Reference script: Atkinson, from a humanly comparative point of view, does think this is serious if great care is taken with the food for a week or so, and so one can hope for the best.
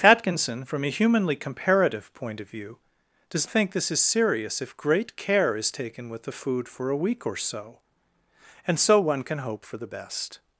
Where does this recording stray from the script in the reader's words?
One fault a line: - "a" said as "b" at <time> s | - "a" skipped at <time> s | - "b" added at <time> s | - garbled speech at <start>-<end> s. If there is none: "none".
none